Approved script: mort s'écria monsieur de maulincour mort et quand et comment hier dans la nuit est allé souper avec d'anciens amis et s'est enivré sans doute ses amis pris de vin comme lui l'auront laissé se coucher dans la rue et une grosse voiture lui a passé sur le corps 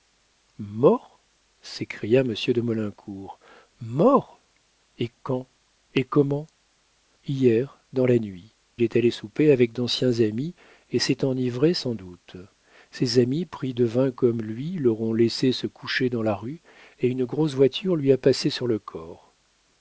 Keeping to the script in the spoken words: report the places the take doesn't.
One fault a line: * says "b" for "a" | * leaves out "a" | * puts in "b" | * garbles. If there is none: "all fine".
all fine